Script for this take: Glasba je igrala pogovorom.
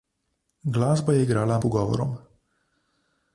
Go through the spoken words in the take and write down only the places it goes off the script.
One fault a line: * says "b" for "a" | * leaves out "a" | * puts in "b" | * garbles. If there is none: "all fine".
all fine